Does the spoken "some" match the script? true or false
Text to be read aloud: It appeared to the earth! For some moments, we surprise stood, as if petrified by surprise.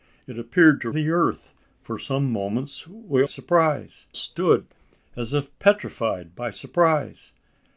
true